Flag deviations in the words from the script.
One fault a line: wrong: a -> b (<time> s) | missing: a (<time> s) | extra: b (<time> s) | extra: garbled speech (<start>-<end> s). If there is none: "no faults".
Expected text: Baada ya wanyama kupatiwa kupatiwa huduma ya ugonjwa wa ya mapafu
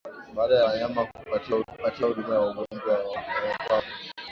no faults